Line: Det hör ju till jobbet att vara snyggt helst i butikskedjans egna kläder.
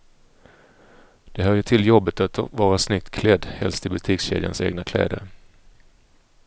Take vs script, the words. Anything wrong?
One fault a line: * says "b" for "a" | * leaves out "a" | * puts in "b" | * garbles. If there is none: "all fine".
* puts in "klädd"